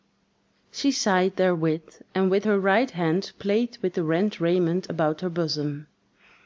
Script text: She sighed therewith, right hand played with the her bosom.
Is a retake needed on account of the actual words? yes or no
yes